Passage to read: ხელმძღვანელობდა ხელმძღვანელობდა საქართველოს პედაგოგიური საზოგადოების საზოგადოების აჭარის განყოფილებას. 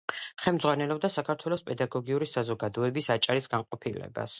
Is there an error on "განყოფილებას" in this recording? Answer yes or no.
no